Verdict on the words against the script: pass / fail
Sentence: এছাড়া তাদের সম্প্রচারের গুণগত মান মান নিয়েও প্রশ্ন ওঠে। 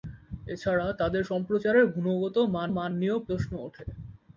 pass